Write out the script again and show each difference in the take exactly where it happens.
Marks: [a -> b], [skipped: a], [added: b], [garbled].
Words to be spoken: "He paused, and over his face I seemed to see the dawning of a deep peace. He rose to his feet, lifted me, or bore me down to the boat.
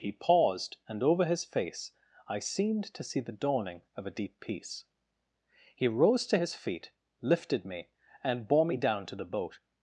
"He paused, and over his face I seemed to see the dawning of a deep peace. He rose to his feet, lifted me, [or -> and] bore me down to the boat.